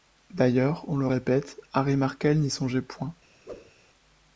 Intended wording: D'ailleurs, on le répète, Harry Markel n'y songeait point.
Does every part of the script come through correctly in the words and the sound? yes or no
no